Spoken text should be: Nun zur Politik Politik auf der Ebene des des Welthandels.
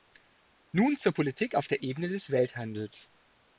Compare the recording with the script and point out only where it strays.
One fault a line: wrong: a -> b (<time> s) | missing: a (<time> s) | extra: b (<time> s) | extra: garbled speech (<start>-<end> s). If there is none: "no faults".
missing: Politik (1.6 s)
missing: des (2.3 s)